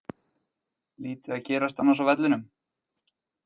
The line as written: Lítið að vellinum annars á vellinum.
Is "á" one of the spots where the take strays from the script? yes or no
no